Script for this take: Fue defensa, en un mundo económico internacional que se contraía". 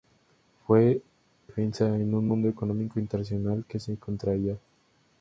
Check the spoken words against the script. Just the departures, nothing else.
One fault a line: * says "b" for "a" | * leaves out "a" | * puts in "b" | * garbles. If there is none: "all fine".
all fine